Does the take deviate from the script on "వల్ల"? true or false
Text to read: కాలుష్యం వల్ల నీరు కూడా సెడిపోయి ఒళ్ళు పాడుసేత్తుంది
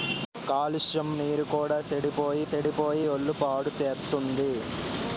true